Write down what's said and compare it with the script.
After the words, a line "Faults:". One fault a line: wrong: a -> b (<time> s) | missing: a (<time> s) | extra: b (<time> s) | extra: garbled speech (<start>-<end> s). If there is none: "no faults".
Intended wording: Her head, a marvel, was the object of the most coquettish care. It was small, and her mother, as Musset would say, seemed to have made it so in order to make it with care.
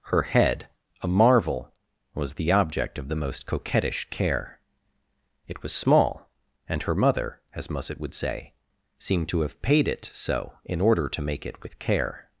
Her head, a marvel, was the object of the most coquettish care. It was small, and her mother, as Musset would say, seemed to have paid it so in order to make it with care.
Faults:
wrong: made -> paid (9.6 s)